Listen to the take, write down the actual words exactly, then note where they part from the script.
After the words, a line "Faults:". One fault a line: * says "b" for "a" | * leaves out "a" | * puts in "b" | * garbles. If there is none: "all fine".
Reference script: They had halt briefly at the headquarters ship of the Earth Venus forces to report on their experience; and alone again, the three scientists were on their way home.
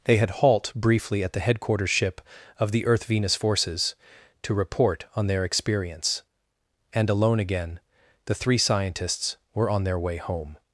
They had halt briefly at the headquarters ship of the Earth Venus forces to report on their experience; and alone again, the three scientists were on their way home.
Faults:
all fine